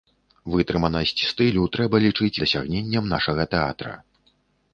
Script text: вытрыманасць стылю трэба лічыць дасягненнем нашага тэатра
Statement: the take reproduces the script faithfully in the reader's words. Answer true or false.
true